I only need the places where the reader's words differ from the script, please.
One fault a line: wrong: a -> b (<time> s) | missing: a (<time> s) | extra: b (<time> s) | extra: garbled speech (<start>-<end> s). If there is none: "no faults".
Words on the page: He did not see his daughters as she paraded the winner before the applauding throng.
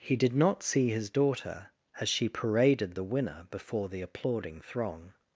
wrong: daughters -> daughter (1.1 s)